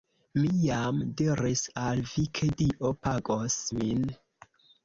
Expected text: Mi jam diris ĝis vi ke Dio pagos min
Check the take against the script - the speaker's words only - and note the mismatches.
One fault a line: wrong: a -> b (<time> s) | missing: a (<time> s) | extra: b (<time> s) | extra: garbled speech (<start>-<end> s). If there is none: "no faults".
wrong: ĝis -> al (1.8 s)